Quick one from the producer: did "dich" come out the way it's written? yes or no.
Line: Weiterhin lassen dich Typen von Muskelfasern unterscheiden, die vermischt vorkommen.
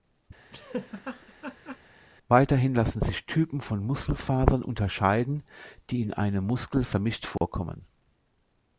no